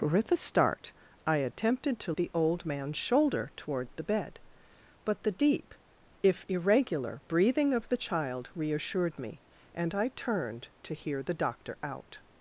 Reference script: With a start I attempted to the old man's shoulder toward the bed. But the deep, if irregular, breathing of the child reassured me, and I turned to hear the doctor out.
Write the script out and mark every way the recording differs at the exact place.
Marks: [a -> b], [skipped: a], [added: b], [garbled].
With a start I attempted to the old man's shoulder toward the bed. But the deep, if irregular, breathing of the child reassured me, and I turned to hear the doctor out.